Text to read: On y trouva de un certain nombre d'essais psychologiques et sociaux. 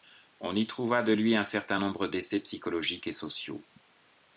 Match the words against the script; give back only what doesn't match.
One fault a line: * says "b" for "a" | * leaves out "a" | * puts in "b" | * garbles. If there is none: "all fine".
* puts in "lui"